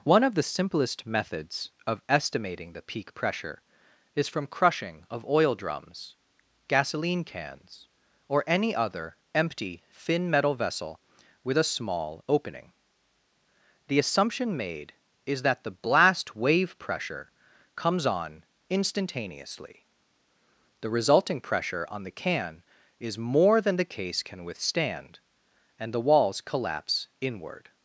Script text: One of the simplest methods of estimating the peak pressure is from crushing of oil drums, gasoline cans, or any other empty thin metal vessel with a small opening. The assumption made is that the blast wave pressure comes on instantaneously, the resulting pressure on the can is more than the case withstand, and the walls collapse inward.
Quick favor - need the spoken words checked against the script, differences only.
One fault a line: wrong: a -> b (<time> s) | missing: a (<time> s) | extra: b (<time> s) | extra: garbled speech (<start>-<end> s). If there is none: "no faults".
extra: can (24.2 s)